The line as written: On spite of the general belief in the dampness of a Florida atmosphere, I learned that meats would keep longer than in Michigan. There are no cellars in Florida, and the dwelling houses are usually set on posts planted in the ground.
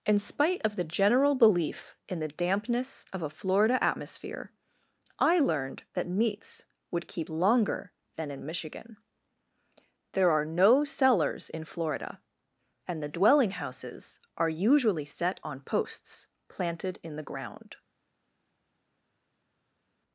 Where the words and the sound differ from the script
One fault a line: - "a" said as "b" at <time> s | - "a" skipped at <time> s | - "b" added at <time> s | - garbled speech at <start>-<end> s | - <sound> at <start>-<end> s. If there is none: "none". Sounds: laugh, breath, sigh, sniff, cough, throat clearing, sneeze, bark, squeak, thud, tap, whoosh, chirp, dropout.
- "On" said as "In" at 0.0 s